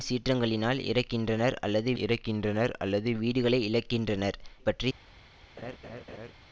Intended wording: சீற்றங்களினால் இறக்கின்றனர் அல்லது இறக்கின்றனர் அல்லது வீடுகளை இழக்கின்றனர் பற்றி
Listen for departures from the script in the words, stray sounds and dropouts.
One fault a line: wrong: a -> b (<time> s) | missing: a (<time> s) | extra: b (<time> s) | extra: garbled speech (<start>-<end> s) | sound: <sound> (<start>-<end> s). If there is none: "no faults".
sound: laugh (5.6-6.3 s)